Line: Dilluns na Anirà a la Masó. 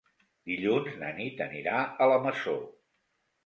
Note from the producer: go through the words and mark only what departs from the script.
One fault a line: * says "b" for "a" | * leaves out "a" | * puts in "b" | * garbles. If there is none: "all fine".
* puts in "Nit"